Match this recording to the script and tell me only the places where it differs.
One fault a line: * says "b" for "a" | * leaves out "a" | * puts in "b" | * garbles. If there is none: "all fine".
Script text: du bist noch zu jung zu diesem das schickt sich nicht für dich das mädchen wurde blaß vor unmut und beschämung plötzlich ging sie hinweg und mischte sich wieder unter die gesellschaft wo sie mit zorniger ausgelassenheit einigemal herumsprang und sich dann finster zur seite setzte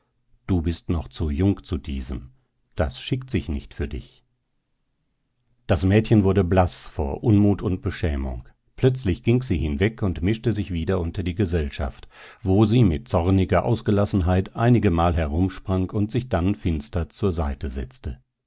all fine